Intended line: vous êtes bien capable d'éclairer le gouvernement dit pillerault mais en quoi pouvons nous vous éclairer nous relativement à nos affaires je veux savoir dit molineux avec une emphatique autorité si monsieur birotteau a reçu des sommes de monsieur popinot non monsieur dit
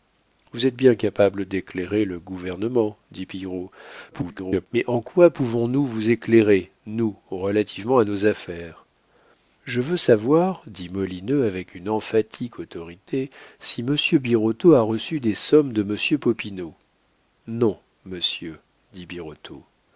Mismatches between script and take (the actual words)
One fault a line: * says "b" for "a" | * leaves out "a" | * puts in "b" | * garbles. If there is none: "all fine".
* garbles